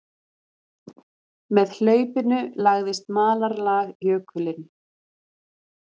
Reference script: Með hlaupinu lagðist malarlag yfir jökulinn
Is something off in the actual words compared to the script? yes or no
yes